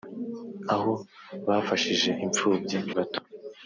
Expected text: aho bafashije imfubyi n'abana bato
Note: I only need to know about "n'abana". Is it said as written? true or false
false